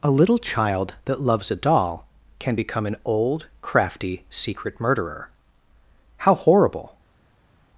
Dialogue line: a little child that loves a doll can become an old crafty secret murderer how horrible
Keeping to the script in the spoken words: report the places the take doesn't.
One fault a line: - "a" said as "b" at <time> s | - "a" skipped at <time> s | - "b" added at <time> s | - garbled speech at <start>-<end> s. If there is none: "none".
none